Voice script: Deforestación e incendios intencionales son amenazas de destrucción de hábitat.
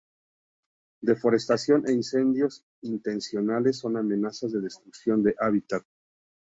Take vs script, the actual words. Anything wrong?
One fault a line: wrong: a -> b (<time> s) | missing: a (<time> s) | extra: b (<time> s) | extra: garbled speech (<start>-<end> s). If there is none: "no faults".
no faults